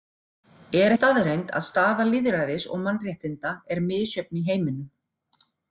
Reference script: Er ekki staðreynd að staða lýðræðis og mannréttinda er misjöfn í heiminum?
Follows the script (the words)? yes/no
no